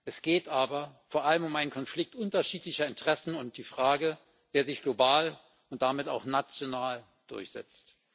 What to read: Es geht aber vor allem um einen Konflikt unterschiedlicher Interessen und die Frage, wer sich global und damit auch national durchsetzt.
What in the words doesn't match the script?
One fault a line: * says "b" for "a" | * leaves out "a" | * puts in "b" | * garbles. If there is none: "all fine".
all fine